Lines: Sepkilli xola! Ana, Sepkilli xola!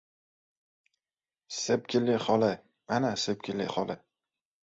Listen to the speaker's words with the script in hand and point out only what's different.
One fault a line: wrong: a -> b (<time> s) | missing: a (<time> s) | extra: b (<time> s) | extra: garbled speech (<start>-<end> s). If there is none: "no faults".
no faults